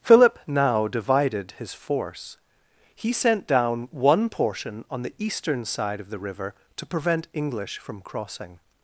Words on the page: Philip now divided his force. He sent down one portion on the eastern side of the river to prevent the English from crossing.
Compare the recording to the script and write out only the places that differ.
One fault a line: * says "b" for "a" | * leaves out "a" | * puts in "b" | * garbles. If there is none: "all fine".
* leaves out "the"